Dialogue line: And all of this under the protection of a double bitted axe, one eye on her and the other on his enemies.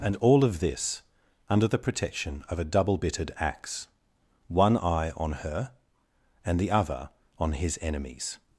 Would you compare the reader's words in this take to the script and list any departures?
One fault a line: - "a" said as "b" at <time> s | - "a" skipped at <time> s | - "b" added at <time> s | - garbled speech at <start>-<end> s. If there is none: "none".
none